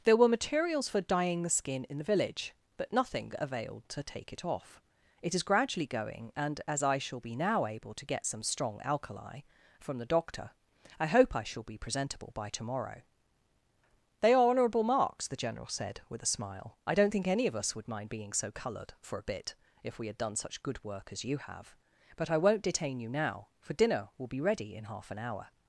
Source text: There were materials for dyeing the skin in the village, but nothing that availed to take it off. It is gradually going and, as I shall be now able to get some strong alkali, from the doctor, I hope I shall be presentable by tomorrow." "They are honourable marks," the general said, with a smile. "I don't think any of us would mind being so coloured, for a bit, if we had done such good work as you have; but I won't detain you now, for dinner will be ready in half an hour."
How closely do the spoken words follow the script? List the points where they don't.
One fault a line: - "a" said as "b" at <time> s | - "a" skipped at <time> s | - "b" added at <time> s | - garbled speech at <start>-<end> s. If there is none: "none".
- "that" skipped at 3.3 s